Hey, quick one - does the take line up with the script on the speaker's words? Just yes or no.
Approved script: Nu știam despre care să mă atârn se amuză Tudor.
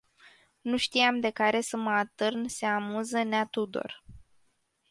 no